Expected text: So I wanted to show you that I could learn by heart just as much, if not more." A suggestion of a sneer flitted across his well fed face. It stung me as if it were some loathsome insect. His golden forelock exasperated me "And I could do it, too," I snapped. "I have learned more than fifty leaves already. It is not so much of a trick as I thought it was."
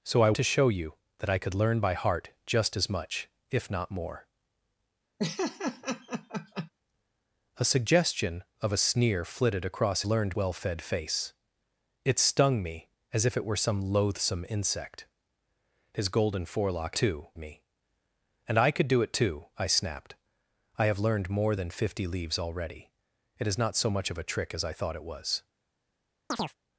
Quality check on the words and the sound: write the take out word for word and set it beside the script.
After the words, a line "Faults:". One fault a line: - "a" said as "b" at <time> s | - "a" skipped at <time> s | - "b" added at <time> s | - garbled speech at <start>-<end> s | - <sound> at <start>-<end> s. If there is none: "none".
So I to show you that I could learn by heart just as much, if not more." A suggestion of a sneer flitted across learned well fed face. It stung me as if it were some loathsome insect. His golden forelock too me "And I could do it, too," I snapped. "I have learned more than fifty leaves already. It is not so much of a trick as I thought it was."
Faults:
- "wanted" skipped at 0.3 s
- laugh at 5.2-6.7 s
- "his" said as "learned" at 10.1 s
- "exasperated" said as "too" at 16.9 s
- chirp at 26.3-26.6 s